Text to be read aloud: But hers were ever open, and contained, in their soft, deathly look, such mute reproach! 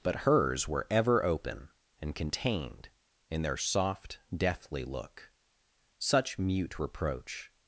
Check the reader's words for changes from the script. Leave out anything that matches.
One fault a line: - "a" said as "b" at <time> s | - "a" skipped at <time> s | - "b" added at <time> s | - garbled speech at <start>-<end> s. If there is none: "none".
none